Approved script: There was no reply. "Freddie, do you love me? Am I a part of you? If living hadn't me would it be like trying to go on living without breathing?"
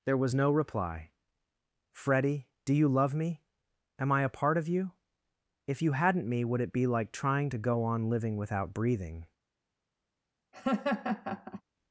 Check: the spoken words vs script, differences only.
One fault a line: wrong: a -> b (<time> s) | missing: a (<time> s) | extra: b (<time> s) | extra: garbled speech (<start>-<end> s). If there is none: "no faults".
wrong: living -> you (5.8 s)